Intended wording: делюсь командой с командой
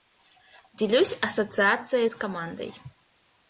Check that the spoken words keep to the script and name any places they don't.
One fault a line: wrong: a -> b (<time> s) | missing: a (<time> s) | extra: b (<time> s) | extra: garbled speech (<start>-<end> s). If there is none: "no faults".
wrong: командой -> ассоциацией (1.2 s)